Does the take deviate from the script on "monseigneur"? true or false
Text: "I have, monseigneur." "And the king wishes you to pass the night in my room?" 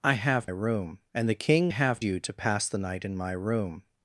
true